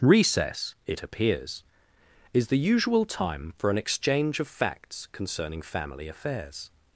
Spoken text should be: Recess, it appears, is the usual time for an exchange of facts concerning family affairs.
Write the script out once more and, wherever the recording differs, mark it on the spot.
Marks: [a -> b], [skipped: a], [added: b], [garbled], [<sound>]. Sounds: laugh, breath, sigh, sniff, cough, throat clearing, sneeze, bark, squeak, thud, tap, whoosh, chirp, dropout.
Recess, it appears, is the usual time for an exchange of facts concerning family affairs.